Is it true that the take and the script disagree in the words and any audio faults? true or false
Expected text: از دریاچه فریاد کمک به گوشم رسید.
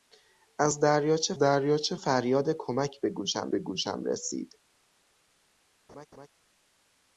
true